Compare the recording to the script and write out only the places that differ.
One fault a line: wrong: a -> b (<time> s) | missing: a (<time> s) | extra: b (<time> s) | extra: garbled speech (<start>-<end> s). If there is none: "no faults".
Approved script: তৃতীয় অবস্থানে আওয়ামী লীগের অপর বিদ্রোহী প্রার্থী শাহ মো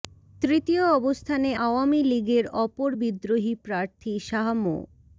no faults